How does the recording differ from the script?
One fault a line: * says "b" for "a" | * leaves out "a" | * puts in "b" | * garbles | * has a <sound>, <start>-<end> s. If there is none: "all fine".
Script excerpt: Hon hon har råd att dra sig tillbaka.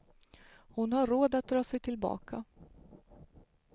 * leaves out "hon"